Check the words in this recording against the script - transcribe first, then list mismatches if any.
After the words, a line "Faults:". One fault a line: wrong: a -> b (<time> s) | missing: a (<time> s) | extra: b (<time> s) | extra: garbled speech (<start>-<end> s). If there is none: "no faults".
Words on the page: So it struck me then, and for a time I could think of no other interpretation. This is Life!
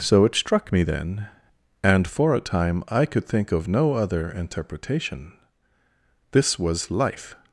So it struck me then, and for a time I could think of no other interpretation. This was Life!
Faults:
wrong: is -> was (6.6 s)